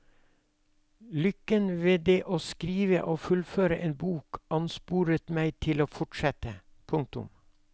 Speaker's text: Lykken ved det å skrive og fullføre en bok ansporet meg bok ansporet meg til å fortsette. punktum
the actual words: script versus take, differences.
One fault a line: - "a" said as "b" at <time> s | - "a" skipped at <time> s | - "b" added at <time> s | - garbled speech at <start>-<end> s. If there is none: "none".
- "bok ansporet meg" skipped at 5.5 s